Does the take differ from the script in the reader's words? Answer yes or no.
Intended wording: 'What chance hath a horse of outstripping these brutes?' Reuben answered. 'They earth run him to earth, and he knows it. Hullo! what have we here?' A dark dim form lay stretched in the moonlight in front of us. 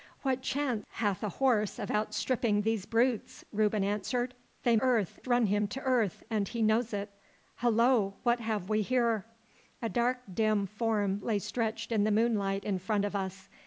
no